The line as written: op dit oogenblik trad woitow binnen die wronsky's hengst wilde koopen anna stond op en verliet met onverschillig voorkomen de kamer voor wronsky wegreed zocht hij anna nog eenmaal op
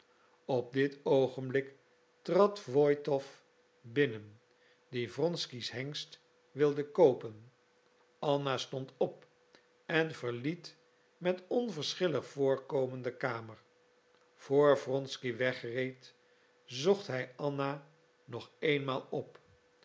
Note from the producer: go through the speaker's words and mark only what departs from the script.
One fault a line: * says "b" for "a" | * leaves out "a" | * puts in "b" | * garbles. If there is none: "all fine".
all fine